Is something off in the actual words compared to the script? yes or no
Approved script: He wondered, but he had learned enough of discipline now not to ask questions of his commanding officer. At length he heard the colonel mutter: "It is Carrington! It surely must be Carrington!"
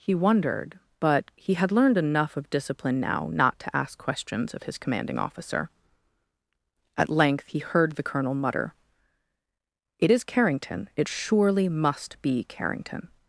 no